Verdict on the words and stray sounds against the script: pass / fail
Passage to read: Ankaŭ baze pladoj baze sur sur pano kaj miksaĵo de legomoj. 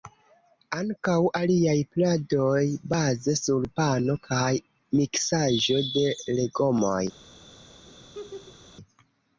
fail